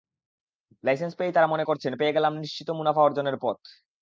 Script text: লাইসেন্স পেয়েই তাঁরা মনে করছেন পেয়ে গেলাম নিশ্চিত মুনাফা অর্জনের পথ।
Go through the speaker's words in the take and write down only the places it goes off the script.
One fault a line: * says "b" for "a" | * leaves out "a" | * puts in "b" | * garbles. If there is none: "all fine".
all fine